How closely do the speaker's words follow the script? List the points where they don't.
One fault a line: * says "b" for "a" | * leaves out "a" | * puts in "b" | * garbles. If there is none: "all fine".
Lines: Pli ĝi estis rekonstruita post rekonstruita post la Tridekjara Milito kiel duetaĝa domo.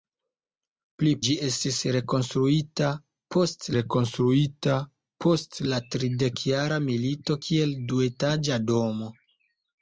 all fine